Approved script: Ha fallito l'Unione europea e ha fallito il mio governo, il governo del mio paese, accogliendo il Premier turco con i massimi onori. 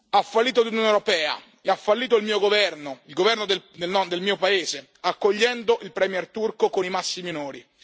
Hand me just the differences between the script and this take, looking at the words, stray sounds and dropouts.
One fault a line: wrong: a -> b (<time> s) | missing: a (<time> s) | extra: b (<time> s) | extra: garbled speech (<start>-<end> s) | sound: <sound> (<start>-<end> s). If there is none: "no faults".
no faults